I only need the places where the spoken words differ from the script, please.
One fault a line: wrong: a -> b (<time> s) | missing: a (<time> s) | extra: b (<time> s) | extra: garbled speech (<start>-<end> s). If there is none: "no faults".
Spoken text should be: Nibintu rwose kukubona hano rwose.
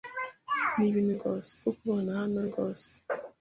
no faults